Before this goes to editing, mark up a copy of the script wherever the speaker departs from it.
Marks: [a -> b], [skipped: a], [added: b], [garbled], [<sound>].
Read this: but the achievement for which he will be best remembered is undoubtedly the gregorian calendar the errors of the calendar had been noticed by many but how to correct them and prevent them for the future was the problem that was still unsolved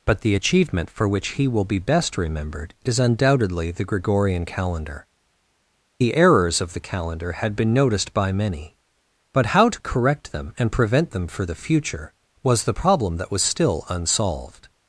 but the achievement for which he will be best remembered is undoubtedly the gregorian calendar the errors of the calendar had been noticed by many but how to correct them and prevent them for the future was the problem that was still unsolved